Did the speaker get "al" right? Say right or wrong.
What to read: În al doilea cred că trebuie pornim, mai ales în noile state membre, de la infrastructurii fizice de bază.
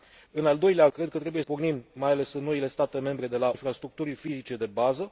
right